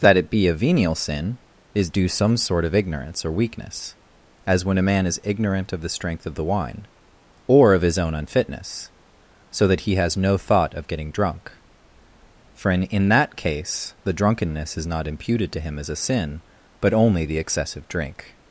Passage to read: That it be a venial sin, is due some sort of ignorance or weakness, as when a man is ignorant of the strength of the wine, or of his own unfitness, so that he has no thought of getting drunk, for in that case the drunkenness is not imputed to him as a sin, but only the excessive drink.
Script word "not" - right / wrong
right